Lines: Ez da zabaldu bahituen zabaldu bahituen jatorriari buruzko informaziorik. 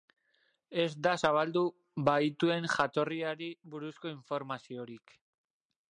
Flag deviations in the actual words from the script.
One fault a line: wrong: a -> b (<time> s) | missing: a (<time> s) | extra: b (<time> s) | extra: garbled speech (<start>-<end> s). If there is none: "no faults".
missing: zabaldu bahituen (2.7 s)